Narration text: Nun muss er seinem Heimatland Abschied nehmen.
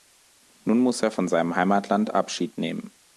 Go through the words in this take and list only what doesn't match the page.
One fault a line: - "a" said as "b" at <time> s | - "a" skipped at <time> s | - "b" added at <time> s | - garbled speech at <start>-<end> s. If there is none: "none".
- "von" added at 1.1 s